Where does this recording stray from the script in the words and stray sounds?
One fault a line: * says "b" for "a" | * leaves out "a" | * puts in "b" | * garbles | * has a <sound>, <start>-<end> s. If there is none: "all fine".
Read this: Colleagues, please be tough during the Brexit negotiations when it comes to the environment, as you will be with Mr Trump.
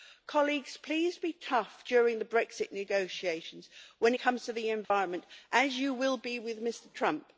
* leaves out "it"
* has a dropout, 4.8-4.9 s